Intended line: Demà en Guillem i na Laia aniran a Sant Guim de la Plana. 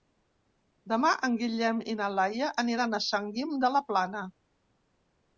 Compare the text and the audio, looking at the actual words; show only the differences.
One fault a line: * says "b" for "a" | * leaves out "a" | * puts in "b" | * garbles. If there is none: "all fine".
all fine